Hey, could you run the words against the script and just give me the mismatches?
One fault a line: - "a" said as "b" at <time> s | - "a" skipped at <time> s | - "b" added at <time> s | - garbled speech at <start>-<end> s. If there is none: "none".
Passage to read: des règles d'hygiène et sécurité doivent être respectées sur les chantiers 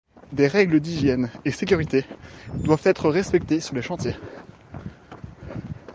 none